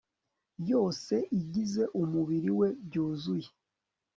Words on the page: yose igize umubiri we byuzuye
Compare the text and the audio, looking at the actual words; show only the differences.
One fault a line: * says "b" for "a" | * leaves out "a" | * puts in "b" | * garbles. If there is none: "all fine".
all fine